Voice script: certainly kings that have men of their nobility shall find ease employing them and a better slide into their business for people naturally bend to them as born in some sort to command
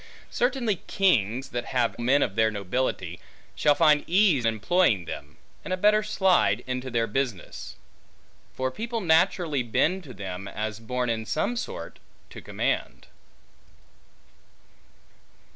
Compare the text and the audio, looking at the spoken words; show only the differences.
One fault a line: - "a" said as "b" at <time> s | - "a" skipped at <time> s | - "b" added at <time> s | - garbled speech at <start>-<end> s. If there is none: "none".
none